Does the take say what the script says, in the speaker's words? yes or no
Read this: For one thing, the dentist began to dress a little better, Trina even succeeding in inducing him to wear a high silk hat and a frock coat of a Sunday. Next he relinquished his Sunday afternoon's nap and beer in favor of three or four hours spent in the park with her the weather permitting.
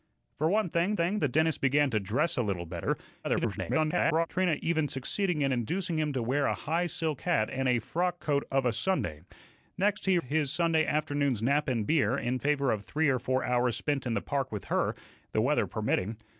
no